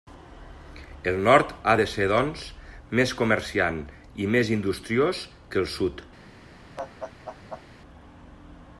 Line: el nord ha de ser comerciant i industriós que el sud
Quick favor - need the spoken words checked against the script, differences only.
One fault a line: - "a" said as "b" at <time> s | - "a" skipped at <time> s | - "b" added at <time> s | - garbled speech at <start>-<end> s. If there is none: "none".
- "doncs més" added at 2.1 s
- "més" added at 4.4 s